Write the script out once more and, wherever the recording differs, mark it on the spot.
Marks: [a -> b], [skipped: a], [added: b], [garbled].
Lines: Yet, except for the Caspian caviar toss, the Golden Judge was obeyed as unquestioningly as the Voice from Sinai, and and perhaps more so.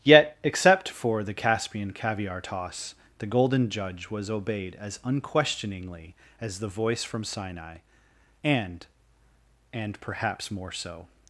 Yet, except for the Caspian caviar toss, the Golden Judge was obeyed as unquestioningly as the Voice from Sinai, and and perhaps more so.